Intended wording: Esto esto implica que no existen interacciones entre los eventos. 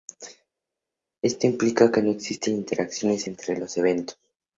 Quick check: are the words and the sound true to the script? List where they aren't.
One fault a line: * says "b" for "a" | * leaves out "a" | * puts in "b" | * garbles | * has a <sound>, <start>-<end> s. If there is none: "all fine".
* leaves out "esto"